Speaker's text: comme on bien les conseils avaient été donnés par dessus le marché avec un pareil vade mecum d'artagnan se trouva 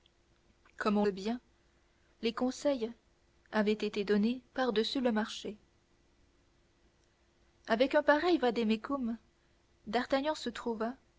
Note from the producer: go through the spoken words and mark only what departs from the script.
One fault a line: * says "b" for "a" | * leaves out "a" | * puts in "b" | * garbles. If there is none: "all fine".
all fine